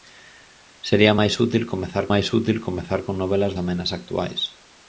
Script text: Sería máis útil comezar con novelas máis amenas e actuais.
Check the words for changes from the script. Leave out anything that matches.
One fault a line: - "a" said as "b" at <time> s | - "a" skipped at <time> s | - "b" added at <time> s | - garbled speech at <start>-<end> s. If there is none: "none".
- "máis útil comezar" added at 2.1 s
- "máis" skipped at 3.5 s